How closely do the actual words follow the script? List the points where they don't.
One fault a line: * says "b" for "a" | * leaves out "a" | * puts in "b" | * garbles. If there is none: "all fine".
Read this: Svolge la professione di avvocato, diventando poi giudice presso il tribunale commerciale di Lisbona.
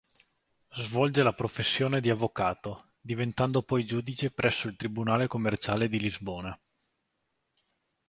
all fine